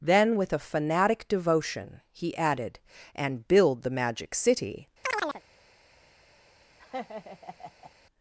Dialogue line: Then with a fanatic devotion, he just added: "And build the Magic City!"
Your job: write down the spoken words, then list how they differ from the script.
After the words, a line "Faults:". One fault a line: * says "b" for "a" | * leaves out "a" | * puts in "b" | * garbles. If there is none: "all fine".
Then with a fanatic devotion, he added: "And build the Magic City!"
Faults:
* leaves out "just"